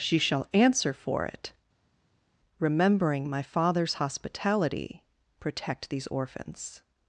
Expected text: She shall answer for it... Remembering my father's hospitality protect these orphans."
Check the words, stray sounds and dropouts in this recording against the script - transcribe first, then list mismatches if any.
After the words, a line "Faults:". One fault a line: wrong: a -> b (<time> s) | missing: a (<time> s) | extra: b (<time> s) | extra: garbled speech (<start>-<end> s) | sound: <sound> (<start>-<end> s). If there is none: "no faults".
She shall answer for it... Remembering my father's hospitality protect these orphans."
Faults:
no faults